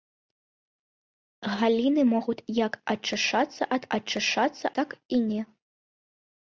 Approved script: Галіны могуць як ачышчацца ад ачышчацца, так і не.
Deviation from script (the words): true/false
false